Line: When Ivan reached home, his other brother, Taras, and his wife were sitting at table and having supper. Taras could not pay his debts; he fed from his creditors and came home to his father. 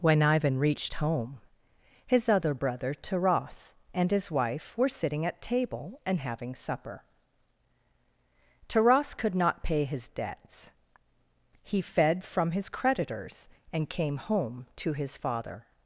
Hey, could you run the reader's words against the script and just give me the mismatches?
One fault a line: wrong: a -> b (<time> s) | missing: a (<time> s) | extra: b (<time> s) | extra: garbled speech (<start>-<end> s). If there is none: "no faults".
no faults